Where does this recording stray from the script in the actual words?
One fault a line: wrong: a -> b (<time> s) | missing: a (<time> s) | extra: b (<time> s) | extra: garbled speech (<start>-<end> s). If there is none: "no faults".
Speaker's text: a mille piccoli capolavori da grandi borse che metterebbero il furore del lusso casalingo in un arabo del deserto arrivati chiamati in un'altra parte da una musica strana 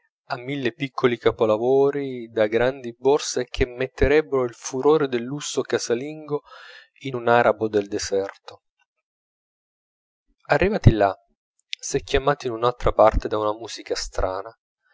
extra: là s'è (10.9 s)